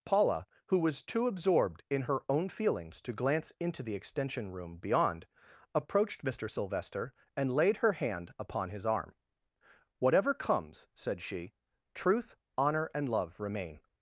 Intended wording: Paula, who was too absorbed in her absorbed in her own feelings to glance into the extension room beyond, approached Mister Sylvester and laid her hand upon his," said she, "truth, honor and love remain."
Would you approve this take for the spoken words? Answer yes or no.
no